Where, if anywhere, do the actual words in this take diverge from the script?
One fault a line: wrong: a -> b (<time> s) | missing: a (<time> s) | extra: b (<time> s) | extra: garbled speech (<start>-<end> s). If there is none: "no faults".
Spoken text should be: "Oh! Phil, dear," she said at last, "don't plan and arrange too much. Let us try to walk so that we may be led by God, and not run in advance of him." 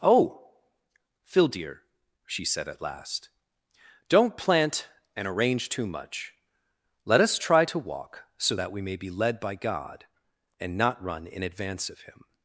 wrong: plan -> plant (4.3 s)